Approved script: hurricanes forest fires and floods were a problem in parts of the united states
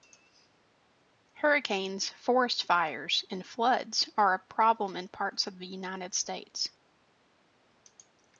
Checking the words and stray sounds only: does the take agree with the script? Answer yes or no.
no